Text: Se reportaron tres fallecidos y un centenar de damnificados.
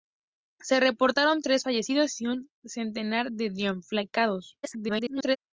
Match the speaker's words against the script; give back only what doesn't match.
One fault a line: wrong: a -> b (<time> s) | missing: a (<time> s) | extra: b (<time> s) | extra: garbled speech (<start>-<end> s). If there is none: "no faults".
extra: garbled speech (4.6-5.4 s)